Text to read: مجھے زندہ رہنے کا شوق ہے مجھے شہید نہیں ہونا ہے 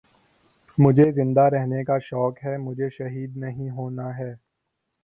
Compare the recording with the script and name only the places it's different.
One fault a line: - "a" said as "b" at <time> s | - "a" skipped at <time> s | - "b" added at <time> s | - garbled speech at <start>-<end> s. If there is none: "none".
none